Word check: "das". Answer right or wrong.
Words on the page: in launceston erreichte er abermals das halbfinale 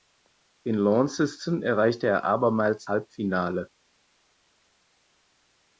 wrong